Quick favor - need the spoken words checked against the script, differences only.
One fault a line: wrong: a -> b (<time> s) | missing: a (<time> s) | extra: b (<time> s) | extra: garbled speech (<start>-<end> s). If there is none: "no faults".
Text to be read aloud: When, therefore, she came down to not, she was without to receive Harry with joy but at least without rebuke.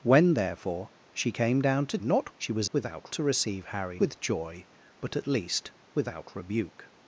no faults